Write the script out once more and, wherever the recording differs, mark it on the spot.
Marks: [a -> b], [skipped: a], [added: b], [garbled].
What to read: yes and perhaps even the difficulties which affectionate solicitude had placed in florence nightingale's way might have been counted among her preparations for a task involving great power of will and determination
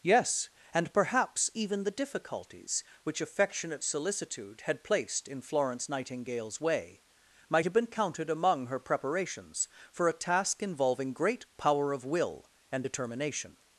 yes and perhaps even the difficulties which affectionate solicitude had placed in florence nightingale's way might have been counted among her preparations for a task involving great power of will and determination